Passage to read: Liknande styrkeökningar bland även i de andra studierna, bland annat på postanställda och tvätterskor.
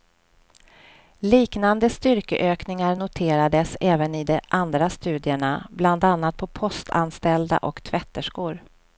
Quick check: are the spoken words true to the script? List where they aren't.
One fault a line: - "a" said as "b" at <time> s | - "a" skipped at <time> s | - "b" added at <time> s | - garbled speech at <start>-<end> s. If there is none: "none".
- "bland" said as "noterades" at 2.9 s